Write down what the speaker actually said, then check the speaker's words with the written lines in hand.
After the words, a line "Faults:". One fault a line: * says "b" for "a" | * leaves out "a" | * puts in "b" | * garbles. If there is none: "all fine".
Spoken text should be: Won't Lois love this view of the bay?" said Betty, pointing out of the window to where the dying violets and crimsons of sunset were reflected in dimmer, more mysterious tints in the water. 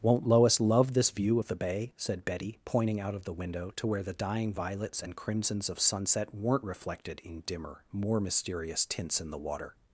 Won't Lois love this view of the bay?" said Betty, pointing out of the window to where the dying violets and crimsons of sunset weren't reflected in dimmer, more mysterious tints in the water.
Faults:
* says "weren't" for "were"